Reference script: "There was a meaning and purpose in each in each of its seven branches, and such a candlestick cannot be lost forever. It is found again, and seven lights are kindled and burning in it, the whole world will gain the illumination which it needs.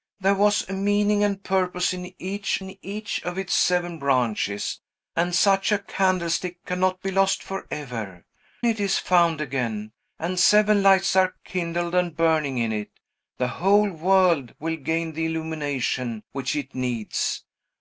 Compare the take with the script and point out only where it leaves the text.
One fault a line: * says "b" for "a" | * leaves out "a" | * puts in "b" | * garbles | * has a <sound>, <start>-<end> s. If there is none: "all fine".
all fine